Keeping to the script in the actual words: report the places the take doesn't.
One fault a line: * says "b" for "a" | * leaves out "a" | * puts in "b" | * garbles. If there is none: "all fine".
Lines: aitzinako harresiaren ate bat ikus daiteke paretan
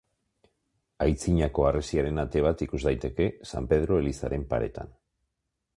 * puts in "san pedro elizaren"